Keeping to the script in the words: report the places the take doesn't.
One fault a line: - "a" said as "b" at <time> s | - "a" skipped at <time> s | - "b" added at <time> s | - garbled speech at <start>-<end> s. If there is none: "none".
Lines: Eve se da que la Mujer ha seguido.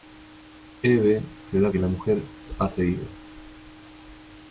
none